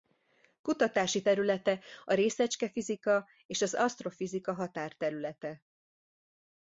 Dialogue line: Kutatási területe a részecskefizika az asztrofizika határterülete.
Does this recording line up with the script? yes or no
no